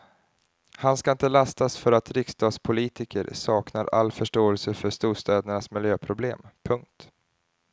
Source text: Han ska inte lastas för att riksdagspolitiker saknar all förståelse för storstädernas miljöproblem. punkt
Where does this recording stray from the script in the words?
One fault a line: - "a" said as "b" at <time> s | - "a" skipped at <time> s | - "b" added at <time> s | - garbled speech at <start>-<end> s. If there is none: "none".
none